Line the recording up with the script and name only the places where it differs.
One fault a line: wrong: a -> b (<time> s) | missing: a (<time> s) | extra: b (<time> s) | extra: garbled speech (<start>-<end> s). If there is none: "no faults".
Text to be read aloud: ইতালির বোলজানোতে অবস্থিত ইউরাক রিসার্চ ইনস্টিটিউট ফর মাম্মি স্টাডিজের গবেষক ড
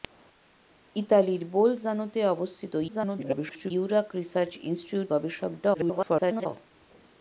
extra: garbled speech (2.9-3.7 s)
missing: ফর মাম্মি স্টাডিজের (5.1 s)
extra: garbled speech (5.7-6.5 s)